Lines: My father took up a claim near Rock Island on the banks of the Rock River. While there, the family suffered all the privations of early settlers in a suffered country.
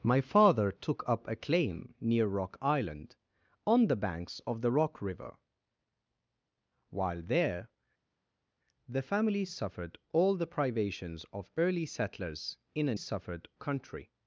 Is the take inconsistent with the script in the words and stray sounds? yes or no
no